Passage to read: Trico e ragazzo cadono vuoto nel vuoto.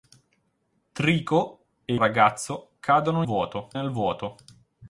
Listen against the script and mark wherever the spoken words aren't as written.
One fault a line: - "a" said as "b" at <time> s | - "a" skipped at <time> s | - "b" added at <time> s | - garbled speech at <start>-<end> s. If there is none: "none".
none